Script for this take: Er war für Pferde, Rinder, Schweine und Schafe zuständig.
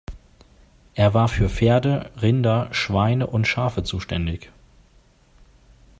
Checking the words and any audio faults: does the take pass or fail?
pass